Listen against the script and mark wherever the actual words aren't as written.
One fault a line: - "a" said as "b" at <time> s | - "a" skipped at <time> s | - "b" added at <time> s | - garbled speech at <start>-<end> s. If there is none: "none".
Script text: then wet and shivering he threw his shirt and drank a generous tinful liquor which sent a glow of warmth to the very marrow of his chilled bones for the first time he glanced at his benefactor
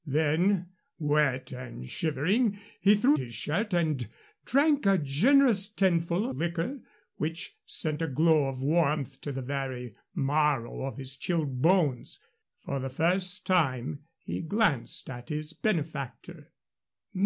none